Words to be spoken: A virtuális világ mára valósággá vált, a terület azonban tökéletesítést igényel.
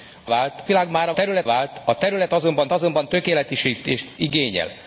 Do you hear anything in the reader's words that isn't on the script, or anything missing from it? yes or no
yes